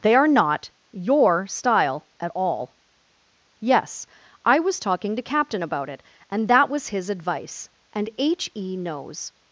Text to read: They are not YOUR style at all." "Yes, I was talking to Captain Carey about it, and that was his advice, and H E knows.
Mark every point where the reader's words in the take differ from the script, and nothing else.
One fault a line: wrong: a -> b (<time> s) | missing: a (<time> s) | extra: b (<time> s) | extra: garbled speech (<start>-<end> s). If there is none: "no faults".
missing: Carey (5.6 s)